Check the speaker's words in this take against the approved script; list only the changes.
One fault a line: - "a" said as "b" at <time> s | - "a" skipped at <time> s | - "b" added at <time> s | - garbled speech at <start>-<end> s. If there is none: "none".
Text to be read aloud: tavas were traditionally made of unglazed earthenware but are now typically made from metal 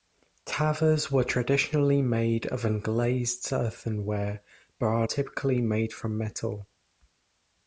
- "now" skipped at 5.1 s